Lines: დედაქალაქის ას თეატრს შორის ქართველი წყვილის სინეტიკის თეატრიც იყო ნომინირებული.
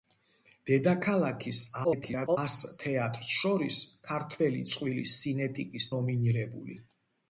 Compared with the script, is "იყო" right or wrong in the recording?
wrong